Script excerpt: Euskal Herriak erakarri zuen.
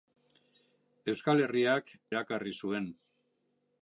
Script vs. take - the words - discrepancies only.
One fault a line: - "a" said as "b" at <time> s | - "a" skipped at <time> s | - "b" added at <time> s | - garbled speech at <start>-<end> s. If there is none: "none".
none